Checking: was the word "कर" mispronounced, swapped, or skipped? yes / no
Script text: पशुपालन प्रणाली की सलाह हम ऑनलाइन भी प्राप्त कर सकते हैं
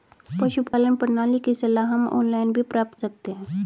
yes